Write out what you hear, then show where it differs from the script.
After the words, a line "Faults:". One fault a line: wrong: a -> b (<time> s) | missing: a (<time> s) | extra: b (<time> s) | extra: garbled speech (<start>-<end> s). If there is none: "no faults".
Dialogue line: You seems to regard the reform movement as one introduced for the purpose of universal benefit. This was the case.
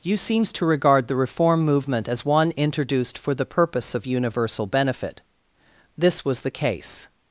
You seems to regard the reform movement as one introduced for the purpose of universal benefit. This was the case.
Faults:
no faults